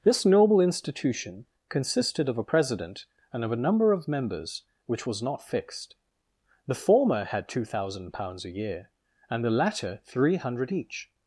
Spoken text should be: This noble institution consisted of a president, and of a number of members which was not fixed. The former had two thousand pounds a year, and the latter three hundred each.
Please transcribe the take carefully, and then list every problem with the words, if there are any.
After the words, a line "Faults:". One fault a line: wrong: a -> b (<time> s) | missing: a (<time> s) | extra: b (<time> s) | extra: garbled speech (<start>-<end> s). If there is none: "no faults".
This noble institution consisted of a president, and of a number of members which was not fixed. The former had two thousand pounds a year, and the latter three hundred each.
Faults:
no faults